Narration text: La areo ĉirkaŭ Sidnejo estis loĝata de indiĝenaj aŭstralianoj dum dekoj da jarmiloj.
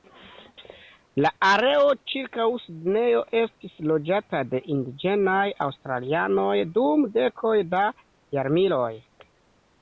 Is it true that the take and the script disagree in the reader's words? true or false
false